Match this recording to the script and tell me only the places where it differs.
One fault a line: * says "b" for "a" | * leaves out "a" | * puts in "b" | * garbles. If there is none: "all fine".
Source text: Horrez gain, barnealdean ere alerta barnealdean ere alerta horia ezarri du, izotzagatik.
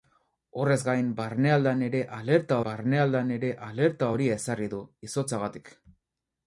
all fine